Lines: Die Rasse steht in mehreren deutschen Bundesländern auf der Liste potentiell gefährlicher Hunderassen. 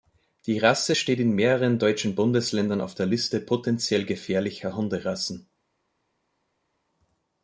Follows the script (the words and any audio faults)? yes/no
yes